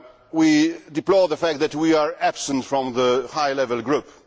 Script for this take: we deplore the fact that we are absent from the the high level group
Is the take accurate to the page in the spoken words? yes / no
no